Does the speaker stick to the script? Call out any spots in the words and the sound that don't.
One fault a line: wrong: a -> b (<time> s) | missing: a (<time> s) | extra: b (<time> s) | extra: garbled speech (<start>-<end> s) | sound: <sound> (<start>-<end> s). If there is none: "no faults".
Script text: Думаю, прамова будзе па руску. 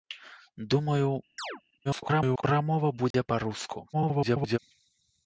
sound: chirp (1.4-1.6 s)
extra: garbled speech (1.8-2.4 s)
sound: dropout (3.1-3.1 s)
extra: garbled speech (3.9-4.6 s)